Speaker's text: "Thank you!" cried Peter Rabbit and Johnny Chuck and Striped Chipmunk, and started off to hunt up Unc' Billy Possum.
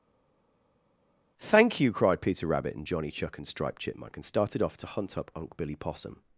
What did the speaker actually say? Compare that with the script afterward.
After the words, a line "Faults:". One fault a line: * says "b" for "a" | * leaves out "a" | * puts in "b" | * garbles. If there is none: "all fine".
"Thank you!" cried Peter Rabbit and Johnny Chuck and Striped Chipmunk, and started off to hunt up Unc' Billy Possum.
Faults:
all fine